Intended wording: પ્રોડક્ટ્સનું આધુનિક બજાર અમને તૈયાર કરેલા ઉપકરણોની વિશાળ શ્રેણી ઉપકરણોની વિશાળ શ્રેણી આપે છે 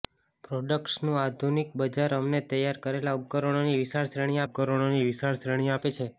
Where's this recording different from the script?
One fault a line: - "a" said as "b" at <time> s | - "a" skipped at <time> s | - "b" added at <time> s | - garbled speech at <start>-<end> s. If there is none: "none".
none